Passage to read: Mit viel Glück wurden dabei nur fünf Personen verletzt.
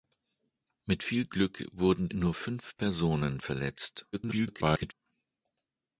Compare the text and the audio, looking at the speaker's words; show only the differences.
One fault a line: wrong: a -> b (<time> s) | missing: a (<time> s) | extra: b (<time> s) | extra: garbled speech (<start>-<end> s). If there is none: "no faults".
missing: dabei (2.1 s)
extra: garbled speech (4.1-4.9 s)